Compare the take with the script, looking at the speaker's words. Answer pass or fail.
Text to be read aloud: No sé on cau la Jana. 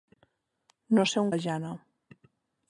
fail